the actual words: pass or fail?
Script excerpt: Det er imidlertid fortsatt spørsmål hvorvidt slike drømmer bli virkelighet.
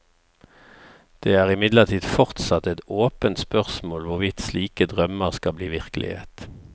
fail